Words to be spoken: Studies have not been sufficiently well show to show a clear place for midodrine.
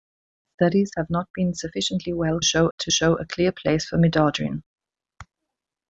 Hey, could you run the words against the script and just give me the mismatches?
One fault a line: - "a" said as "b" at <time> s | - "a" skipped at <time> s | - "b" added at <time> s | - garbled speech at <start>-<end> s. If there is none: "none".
none